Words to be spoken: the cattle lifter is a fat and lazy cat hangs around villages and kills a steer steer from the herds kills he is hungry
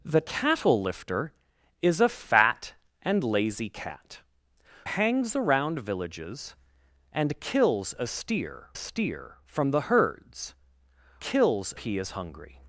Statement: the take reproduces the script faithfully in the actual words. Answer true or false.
true